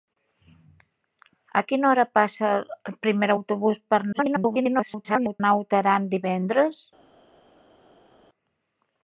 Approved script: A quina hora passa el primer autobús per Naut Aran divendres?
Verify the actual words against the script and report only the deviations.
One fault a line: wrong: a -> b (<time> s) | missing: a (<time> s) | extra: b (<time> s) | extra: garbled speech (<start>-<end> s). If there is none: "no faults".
extra: garbled speech (4.1-5.4 s)